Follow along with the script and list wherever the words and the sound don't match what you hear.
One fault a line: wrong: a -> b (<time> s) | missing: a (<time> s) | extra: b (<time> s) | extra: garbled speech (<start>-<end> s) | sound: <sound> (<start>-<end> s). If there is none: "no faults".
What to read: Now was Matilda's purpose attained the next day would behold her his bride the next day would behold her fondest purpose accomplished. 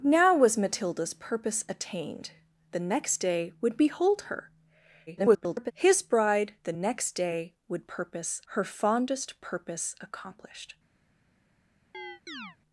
extra: garbled speech (5.1-5.7 s)
wrong: behold -> purpose (7.9 s)
sound: chirp (11.9-12.6 s)